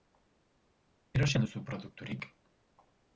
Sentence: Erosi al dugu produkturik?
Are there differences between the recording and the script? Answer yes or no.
yes